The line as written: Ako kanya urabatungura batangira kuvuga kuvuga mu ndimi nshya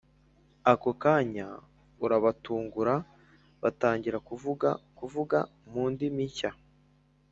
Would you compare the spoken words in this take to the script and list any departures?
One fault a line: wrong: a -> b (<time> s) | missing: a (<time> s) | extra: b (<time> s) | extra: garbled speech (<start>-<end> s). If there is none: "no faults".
no faults